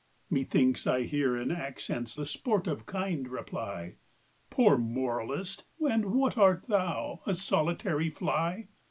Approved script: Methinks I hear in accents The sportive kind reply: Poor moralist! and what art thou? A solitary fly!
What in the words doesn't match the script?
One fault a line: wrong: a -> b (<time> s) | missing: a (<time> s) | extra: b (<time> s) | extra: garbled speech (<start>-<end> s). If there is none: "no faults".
no faults